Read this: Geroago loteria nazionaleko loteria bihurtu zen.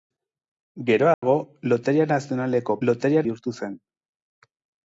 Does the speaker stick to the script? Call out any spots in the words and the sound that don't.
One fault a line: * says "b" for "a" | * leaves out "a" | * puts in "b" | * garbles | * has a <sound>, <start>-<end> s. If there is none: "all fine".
* has a dropout, 1.1-1.2 s